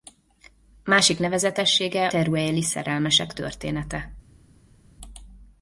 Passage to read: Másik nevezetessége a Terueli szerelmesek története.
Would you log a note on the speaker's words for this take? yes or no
yes